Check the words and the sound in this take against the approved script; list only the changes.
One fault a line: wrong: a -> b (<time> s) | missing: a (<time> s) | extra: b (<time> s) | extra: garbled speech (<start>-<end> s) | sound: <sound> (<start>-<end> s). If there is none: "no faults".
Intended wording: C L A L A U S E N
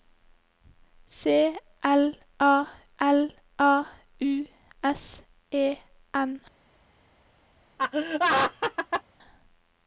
sound: laugh (7.8-9.0 s)